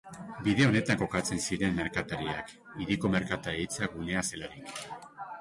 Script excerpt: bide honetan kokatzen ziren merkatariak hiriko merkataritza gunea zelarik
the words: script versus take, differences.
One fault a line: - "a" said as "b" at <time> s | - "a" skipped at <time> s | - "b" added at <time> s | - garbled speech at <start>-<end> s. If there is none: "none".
none